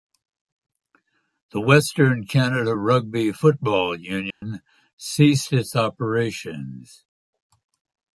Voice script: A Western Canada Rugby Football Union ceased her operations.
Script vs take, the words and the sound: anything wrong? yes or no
yes